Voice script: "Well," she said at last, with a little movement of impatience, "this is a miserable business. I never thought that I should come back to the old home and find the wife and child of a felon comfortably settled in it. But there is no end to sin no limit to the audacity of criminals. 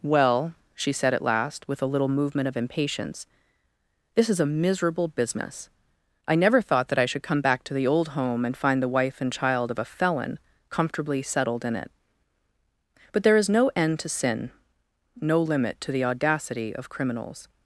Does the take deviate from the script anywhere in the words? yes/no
no